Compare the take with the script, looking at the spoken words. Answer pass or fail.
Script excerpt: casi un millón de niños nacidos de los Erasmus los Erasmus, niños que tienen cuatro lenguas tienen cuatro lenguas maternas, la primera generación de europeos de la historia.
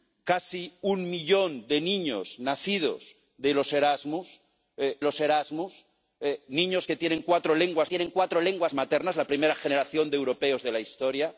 pass